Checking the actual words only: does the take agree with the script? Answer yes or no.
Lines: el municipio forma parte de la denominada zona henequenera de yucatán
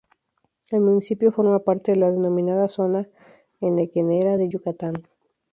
yes